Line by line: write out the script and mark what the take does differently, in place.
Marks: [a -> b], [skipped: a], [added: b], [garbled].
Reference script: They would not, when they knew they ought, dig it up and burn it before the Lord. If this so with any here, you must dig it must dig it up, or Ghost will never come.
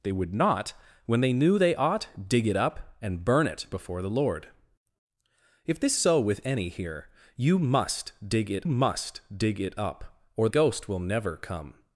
They would not, when they knew they ought, dig it up and burn it before the Lord. If this so with any here, you must dig it must dig it up, or Ghost will never come.